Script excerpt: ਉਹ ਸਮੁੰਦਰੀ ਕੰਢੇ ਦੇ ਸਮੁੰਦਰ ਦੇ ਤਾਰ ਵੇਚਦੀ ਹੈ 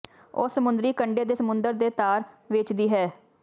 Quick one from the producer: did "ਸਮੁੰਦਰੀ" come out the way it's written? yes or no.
yes